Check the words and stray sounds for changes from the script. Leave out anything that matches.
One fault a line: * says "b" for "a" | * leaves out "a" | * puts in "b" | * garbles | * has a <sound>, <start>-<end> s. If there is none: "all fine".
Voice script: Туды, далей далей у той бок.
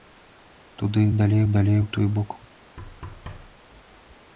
* has a thud, 2.8-3.6 s